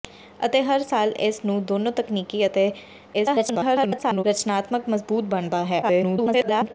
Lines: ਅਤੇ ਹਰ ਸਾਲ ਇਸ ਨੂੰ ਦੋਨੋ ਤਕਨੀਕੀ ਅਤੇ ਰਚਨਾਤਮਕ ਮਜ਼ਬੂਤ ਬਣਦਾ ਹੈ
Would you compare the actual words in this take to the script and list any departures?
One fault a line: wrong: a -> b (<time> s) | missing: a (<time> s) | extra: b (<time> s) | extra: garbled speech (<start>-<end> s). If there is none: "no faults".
extra: garbled speech (3.1-4.2 s)
extra: garbled speech (5.8-6.7 s)